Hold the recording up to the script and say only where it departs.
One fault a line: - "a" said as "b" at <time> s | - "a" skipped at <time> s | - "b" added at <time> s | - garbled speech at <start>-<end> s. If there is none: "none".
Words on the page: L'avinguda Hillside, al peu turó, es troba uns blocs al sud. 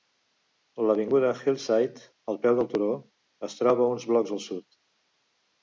- "del" added at 2.6 s